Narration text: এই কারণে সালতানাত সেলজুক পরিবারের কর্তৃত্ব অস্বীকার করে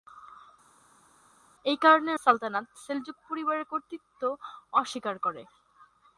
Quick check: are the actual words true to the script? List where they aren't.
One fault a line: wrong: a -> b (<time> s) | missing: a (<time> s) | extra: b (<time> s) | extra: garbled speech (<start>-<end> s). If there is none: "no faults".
no faults